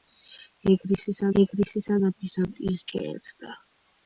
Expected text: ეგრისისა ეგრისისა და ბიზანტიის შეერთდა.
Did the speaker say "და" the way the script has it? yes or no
yes